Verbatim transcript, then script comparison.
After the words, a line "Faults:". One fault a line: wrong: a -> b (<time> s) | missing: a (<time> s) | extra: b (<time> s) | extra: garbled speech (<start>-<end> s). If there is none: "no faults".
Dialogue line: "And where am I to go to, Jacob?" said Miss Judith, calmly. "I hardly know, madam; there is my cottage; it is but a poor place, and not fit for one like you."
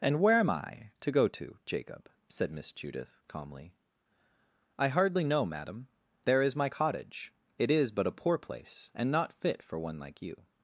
"And where am I to go to, Jacob?" said Miss Judith, calmly. "I hardly know, madam; there is my cottage; it is but a poor place, and not fit for one like you."
Faults:
no faults